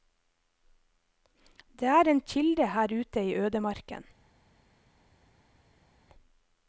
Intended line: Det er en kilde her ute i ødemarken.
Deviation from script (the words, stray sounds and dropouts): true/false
false